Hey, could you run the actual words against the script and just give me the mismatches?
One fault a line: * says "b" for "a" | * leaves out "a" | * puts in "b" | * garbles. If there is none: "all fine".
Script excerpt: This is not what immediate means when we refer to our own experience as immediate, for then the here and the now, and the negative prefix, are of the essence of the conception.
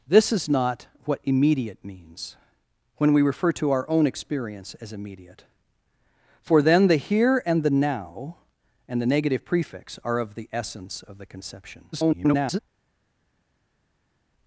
* garbles